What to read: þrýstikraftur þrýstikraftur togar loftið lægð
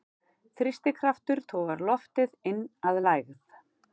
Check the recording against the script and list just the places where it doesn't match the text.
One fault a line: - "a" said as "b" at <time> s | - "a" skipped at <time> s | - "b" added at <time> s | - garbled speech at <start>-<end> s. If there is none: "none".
- "þrýstikraftur" skipped at 1.4 s
- "inn að" added at 2.5 s